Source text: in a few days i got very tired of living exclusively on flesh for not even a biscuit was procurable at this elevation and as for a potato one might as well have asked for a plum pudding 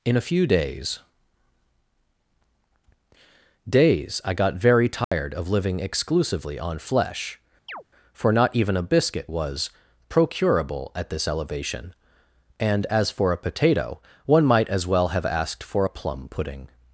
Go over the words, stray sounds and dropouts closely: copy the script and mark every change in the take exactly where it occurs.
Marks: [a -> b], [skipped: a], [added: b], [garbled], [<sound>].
in a few days [added: days] i got very tired [dropout] of living exclusively on flesh [chirp] for not even a biscuit was procurable at this elevation and as for a potato one might as well have asked for a plum pudding